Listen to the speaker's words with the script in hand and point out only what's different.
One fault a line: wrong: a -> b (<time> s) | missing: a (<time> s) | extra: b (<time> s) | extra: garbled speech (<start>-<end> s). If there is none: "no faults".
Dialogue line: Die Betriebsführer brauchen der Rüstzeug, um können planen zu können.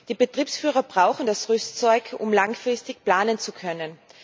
wrong: der -> das (1.3 s)
wrong: können -> langfristig (2.3 s)